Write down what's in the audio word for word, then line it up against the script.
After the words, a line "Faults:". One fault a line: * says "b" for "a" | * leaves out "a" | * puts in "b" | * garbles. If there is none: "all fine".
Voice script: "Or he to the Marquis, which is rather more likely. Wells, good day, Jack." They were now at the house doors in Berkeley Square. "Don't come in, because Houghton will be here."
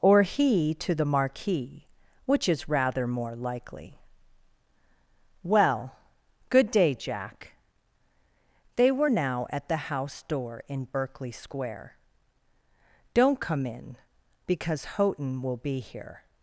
"Or he to the Marquis, which is rather more likely. Well, good day, Jack." They were now at the house door in Berkeley Square. "Don't come in, because Houghton will be here."
Faults:
* says "Well" for "Wells"
* says "door" for "doors"